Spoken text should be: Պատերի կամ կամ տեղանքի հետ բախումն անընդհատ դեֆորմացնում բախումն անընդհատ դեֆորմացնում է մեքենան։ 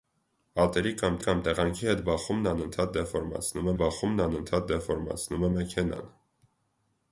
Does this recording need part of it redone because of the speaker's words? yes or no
no